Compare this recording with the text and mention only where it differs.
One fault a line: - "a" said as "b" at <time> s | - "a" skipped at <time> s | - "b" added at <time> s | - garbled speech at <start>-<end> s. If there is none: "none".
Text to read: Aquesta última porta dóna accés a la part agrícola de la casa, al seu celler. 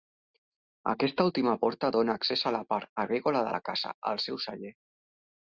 none